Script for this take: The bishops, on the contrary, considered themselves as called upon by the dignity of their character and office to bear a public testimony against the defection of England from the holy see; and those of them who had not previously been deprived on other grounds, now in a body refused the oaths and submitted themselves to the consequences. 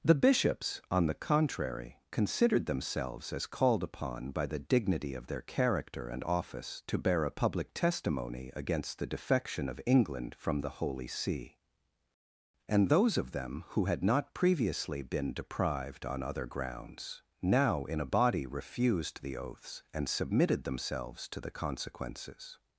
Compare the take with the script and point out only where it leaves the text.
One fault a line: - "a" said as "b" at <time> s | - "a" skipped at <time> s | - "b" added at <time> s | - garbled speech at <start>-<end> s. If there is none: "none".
none